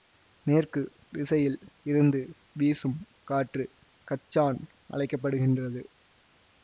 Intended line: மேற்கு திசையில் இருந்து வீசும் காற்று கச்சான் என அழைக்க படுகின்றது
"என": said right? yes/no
no